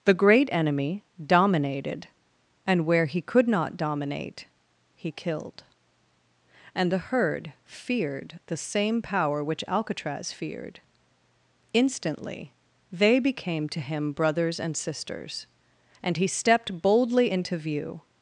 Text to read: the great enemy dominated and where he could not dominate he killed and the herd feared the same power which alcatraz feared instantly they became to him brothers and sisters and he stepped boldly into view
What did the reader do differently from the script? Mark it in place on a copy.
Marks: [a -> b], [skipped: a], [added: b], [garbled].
the great enemy dominated and where he could not dominate he killed and the herd feared the same power which alcatraz feared instantly they became to him brothers and sisters and he stepped boldly into view